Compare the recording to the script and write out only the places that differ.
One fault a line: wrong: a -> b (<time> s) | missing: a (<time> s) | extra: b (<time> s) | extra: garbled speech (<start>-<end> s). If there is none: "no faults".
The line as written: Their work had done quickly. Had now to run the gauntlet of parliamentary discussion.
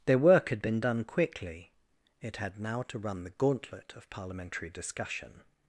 extra: been (0.6 s)
extra: It (2.2 s)